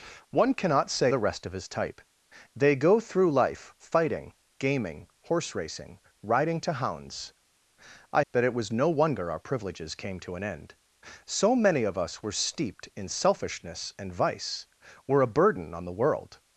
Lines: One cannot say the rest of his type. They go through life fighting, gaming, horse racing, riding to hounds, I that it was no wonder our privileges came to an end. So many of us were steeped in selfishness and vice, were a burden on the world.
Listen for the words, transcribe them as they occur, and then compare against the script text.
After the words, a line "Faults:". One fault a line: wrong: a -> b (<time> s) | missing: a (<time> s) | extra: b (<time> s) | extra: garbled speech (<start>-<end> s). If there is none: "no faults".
One cannot say the rest of his type. They go through life fighting, gaming, horse racing, riding to hounds, I that it was no wonder our privileges came to an end. So many of us were steeped in selfishness and vice, were a burden on the world.
Faults:
no faults